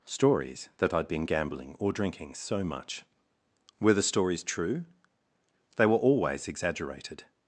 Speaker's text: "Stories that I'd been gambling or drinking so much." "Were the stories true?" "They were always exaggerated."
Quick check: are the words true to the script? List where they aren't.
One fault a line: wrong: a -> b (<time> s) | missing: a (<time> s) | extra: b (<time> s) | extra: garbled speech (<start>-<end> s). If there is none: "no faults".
no faults